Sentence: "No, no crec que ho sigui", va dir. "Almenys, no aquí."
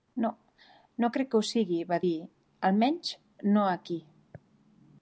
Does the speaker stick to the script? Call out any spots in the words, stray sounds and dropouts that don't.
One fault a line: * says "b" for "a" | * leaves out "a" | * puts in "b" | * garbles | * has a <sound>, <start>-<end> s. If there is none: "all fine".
all fine